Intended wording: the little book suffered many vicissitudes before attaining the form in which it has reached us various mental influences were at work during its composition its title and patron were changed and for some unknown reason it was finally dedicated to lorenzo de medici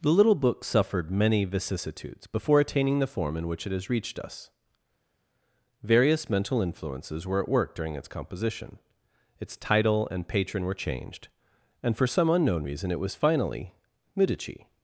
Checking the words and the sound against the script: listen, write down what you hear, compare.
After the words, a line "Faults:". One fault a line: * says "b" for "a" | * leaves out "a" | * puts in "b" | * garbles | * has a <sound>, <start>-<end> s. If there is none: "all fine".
the little book suffered many vicissitudes before attaining the form in which it has reached us various mental influences were at work during its composition its title and patron were changed and for some unknown reason it was finally medici
Faults:
* leaves out "dedicated to lorenzo de"